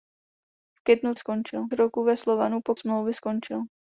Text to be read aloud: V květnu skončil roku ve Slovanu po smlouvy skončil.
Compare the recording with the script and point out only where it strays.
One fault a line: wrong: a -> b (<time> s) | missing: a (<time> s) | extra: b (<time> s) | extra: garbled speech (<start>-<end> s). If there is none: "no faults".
no faults